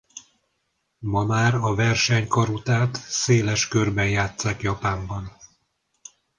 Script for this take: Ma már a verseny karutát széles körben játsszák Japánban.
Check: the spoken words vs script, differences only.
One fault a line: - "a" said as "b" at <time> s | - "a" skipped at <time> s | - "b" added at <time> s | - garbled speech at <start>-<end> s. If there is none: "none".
none